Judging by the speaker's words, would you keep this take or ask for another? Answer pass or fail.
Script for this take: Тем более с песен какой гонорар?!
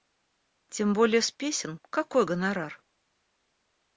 pass